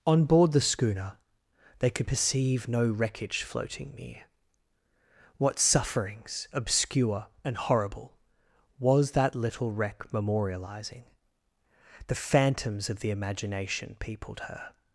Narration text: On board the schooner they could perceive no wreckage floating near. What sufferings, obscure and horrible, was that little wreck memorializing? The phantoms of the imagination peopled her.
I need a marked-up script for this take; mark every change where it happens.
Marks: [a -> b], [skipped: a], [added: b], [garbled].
On board the schooner they could perceive no wreckage floating near. What sufferings, obscure and horrible, was that little wreck memorializing? The phantoms of the imagination peopled her.